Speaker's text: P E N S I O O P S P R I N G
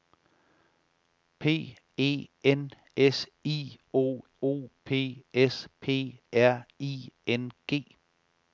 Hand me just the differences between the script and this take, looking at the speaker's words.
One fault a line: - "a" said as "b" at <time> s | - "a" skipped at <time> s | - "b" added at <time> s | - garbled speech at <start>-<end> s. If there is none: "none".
none